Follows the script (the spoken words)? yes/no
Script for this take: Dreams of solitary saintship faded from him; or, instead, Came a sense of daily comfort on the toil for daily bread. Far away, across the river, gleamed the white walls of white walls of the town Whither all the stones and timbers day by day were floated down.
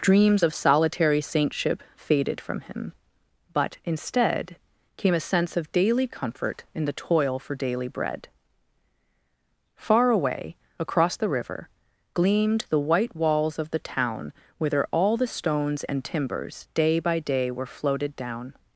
no